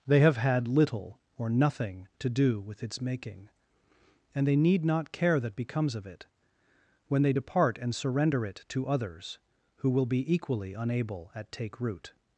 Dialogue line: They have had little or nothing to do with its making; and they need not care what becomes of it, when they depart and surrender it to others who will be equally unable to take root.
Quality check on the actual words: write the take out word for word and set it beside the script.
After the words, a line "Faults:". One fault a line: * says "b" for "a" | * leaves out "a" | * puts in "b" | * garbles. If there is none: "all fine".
They have had little or nothing to do with its making; and they need not care that becomes of it, when they depart and surrender it to others who will be equally unable at take root.
Faults:
* says "that" for "what"
* says "at" for "to"